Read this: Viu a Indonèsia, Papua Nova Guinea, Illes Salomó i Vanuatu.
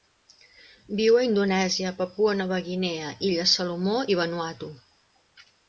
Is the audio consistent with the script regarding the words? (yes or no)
yes